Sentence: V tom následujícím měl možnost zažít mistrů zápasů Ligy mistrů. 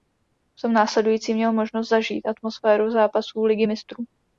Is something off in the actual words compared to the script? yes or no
yes